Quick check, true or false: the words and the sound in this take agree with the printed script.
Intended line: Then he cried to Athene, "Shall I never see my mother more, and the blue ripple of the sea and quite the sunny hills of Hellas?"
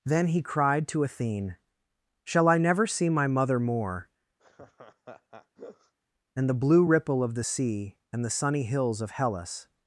false